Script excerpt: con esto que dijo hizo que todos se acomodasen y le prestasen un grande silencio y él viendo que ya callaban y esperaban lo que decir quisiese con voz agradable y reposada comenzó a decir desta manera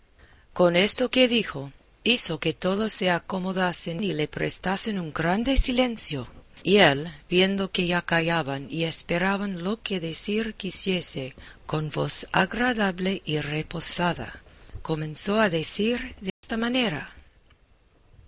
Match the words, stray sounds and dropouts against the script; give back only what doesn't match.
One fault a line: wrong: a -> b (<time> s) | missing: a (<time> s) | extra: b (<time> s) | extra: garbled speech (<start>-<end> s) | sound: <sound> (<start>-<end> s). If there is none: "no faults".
sound: dropout (16.3-16.4 s)